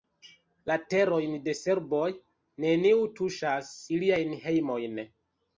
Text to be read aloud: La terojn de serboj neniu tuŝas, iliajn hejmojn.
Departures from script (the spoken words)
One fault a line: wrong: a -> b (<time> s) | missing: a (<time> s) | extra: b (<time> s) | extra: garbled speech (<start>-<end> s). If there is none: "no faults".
no faults